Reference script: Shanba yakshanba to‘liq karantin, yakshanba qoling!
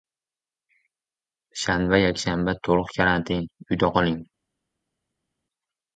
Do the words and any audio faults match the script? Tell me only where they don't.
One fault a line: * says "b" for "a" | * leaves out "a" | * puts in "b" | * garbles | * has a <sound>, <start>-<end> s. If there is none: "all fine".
* says "uyda" for "yakshanba"